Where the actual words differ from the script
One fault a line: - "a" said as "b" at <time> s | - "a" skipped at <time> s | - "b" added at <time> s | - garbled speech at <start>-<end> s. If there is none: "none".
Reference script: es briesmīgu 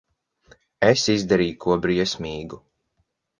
- "izdarīju ko" added at 1.1 s